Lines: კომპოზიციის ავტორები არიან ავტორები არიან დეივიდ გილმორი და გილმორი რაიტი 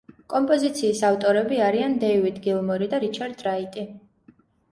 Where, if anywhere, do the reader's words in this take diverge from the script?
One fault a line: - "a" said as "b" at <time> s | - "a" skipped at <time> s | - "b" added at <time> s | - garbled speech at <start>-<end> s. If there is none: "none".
- "ავტორები არიან" skipped at 1.9 s
- "გილმორი" said as "რიჩარდ" at 3.1 s